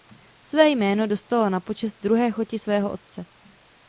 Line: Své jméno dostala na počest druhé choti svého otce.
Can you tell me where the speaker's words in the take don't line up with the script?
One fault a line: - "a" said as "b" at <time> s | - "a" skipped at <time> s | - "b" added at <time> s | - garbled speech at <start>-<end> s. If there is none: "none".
none